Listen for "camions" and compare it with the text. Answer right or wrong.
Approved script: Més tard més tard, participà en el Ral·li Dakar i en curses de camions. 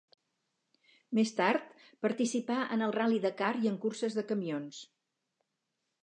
right